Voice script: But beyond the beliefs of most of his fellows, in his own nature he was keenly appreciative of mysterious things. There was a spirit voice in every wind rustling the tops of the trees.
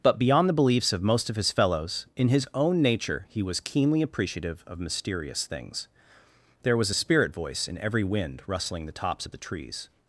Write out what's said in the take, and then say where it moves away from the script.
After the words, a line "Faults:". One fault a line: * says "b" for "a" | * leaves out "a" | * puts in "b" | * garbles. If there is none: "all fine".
But beyond the beliefs of most of his fellows, in his own nature he was keenly appreciative of mysterious things. There was a spirit voice in every wind rustling the tops of the trees.
Faults:
all fine